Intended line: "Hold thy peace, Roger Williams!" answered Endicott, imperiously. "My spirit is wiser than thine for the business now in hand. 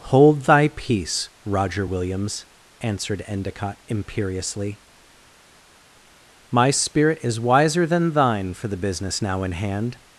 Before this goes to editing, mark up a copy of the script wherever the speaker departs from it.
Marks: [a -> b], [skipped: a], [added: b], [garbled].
"Hold thy peace, Roger Williams!" answered Endicott, imperiously. "My spirit is wiser than thine for the business now in hand.